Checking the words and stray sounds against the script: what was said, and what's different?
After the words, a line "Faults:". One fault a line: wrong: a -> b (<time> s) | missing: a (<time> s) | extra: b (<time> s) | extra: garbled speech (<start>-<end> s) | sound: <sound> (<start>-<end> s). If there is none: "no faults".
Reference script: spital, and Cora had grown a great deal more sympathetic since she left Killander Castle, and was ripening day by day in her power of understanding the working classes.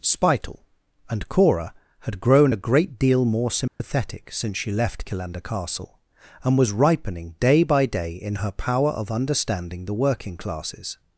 spital, and Cora had grown a great deal more sympathetic since she left Killander Castle, and was ripening day by day in her power of understanding the working classes.
Faults:
sound: dropout (3.7-3.8 s)